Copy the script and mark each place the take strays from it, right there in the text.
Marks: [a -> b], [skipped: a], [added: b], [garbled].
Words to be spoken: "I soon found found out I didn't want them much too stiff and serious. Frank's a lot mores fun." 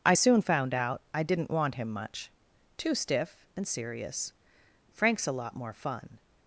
"I soon found [skipped: found] out I didn't want [them -> him] much too stiff and serious. Frank's a lot [mores -> more] fun."